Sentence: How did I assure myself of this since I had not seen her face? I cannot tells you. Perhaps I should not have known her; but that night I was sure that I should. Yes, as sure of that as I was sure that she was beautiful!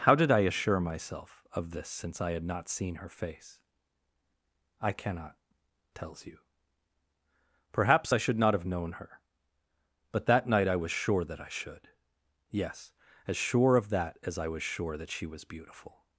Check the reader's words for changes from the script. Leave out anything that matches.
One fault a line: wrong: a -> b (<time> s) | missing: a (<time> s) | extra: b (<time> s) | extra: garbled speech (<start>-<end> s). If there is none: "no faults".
no faults